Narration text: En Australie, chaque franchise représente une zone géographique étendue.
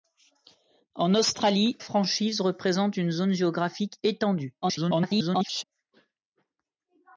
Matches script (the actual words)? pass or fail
fail